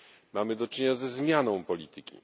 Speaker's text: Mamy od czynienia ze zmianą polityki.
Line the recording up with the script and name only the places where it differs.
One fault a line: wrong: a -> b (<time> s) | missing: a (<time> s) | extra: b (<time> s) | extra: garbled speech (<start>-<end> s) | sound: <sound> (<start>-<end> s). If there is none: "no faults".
wrong: od -> do (0.6 s)